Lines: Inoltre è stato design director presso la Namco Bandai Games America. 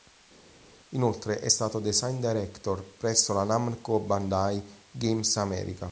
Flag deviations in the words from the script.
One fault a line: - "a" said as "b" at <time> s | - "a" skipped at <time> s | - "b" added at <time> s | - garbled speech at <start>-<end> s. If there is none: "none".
none